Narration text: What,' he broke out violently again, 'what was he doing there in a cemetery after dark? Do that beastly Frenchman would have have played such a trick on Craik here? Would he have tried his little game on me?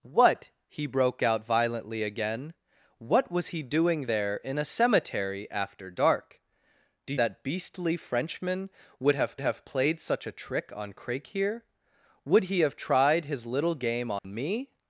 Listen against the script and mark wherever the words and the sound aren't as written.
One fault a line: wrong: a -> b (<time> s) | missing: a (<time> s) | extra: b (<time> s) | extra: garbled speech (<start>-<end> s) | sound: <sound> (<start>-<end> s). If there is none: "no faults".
sound: dropout (14.2-14.2 s)